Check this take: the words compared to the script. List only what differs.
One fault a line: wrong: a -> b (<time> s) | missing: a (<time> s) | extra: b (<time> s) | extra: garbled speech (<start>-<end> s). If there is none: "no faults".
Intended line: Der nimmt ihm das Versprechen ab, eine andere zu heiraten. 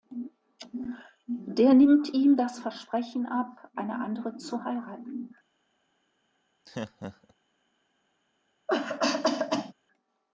no faults